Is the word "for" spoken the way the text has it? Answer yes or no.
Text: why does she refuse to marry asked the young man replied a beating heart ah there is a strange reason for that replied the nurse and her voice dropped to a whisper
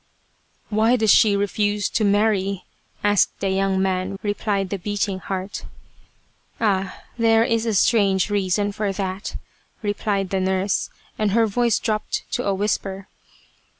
yes